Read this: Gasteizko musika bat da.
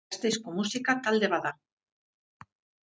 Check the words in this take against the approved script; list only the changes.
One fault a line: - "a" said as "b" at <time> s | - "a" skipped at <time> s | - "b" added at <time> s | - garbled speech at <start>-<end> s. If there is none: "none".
- "talde" added at 1.1 s